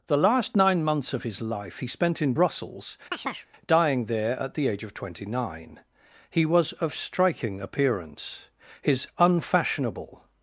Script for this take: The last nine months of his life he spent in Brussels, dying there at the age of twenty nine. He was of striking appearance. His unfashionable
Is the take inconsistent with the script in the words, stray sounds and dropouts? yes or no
yes